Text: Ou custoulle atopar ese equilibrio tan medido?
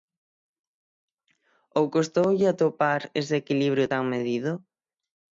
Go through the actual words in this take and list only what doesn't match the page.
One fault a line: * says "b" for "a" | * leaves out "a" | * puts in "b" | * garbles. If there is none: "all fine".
all fine